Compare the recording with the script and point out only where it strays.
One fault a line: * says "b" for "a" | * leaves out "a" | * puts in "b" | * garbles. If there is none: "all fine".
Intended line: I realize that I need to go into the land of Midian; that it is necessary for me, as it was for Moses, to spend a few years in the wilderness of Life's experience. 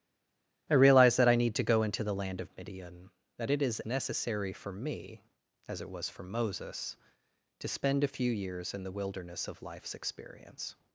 all fine